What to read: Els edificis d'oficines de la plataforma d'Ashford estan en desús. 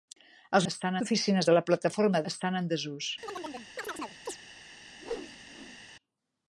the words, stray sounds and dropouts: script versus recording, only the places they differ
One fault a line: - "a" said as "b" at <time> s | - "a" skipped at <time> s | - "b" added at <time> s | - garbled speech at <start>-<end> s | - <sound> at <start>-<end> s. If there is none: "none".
- "edificis" said as "estan" at 0.7 s
- "d'Ashford" skipped at 2.2 s
- chirp at 3.2-4.4 s
- whoosh at 5.0-5.8 s